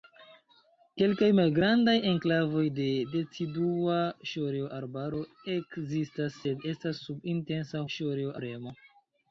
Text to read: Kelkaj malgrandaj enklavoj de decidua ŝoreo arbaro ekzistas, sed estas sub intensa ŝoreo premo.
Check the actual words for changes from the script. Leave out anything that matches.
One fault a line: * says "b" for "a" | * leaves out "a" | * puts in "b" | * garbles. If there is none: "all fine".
all fine